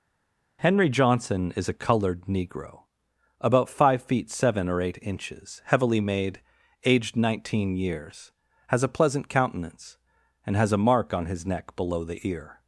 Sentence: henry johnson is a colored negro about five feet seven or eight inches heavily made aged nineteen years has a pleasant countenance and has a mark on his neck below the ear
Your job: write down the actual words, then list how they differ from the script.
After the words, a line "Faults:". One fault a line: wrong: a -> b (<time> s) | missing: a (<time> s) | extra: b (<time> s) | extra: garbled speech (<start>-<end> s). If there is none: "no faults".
henry johnson is a colored negro about five feet seven or eight inches heavily made aged nineteen years has a pleasant countenance and has a mark on his neck below the ear
Faults:
no faults